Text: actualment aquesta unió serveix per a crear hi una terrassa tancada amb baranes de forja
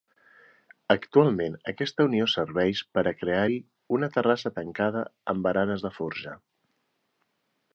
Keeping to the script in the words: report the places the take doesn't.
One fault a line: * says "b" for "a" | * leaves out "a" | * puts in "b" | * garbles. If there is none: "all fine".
all fine